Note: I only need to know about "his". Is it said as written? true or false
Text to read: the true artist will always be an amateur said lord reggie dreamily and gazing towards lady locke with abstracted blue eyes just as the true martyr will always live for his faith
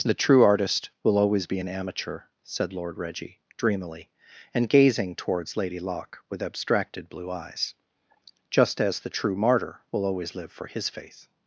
true